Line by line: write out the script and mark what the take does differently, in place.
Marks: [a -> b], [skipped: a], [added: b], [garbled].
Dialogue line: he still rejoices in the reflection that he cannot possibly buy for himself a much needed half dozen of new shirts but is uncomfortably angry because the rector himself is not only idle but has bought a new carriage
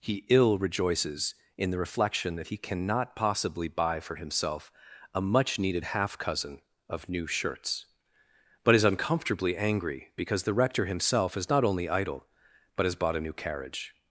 he [still -> ill] rejoices in the reflection that he cannot possibly buy for himself a much needed half [dozen -> cousin] of new shirts but is uncomfortably angry because the rector himself is not only idle but has bought a new carriage